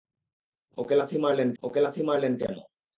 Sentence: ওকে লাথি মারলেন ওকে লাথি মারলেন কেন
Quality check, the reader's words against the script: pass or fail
pass